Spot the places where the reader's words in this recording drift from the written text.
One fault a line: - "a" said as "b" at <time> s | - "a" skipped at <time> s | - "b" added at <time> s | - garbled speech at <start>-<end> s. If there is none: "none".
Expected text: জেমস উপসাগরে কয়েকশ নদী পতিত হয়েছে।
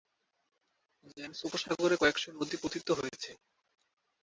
none